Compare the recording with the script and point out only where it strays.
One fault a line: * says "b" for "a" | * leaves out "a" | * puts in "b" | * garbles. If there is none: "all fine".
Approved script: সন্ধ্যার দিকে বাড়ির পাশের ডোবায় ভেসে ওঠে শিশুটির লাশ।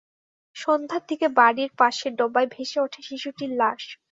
all fine